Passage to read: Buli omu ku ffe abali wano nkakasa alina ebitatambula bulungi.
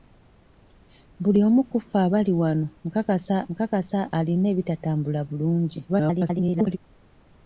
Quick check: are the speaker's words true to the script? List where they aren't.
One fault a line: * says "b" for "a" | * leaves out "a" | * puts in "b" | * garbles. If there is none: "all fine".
* puts in "nkakasa"
* garbles